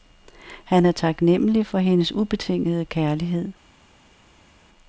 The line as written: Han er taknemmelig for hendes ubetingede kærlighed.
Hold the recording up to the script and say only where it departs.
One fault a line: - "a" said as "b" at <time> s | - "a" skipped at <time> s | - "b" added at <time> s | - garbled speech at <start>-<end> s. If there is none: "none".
none